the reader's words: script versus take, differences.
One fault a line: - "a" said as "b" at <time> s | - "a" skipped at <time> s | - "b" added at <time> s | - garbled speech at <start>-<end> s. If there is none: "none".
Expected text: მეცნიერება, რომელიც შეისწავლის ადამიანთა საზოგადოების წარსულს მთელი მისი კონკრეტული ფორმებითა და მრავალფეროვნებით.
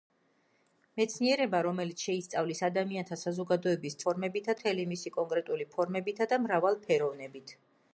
- "წარსულს" said as "ფორმებითა" at 4.1 s